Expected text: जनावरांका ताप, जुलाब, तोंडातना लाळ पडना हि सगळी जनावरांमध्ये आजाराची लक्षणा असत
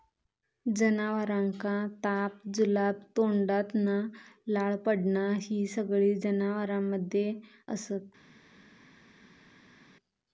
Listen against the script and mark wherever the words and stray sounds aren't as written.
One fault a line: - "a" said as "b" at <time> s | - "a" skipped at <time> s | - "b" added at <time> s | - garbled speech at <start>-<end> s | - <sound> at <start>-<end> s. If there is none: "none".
- "आजाराची लक्षणा" skipped at 7.3 s